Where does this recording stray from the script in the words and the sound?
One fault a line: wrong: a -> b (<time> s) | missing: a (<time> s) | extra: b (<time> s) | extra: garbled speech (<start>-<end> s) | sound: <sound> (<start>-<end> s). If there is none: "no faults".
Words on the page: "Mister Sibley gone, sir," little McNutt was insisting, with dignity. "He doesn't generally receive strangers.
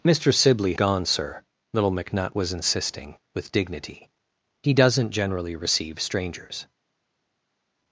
no faults